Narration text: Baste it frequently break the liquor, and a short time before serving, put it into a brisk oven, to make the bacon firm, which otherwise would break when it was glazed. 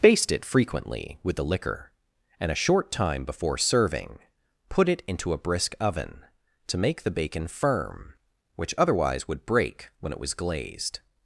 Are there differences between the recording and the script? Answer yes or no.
yes